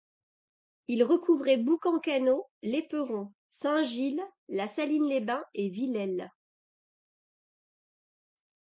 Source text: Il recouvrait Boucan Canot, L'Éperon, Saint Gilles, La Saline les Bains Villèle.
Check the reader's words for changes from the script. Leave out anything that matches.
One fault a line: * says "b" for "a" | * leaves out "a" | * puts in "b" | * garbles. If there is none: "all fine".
* puts in "et"